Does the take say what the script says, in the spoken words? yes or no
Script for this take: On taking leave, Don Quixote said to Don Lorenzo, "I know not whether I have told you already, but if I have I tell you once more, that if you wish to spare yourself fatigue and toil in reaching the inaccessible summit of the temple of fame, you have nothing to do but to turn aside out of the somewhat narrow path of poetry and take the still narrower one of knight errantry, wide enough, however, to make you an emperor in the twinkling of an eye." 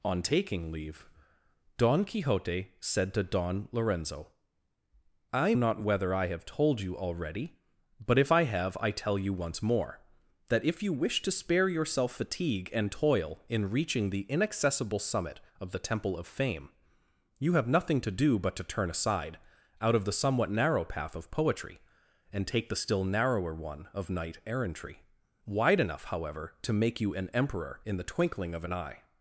no